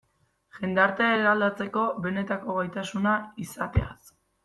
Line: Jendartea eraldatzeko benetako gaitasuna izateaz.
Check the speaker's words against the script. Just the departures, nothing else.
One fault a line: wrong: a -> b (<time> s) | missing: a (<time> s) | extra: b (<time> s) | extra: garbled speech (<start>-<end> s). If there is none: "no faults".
no faults